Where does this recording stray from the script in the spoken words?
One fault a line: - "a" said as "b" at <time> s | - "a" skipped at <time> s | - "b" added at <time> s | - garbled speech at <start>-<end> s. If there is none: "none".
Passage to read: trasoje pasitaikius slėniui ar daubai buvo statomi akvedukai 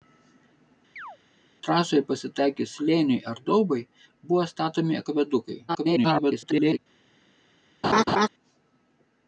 - garbled speech at 5.7-6.8 s